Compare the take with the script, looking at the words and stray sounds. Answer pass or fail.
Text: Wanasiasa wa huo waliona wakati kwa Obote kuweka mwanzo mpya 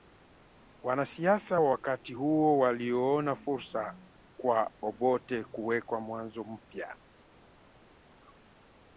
fail